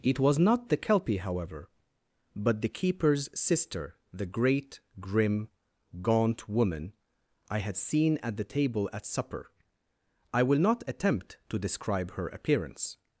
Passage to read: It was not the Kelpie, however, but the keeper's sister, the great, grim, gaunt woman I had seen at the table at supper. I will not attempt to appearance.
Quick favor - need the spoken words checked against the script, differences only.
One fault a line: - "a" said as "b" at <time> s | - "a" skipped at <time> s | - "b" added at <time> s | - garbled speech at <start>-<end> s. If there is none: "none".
- "describe her" added at 11.6 s